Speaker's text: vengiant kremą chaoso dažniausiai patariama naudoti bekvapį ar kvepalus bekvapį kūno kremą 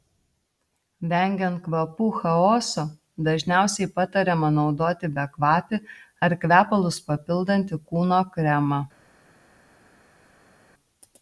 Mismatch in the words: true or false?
true